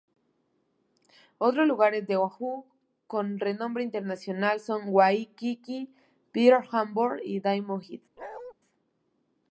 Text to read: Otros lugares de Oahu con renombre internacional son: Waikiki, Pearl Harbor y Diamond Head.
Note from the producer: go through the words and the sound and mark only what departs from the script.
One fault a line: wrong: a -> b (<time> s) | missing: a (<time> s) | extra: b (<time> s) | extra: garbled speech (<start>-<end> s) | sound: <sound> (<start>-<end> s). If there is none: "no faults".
sound: bark (8.2-8.5 s)